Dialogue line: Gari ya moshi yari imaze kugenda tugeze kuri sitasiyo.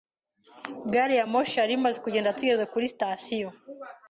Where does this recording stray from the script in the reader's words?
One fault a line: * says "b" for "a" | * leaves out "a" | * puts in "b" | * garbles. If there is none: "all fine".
all fine